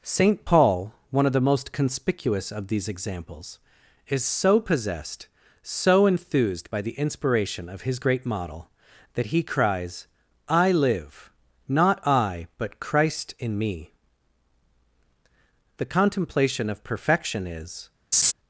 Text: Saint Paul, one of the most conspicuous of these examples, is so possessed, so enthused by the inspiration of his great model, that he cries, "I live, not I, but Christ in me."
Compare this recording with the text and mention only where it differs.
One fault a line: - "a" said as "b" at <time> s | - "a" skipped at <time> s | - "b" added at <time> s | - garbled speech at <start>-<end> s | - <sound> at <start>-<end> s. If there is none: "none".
- "The contemplation of perfection is" added at 15.8 s
- laugh at 18.1-18.3 s